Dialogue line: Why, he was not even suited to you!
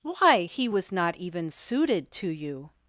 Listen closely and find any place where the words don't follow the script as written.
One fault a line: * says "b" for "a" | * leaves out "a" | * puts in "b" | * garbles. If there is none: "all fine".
all fine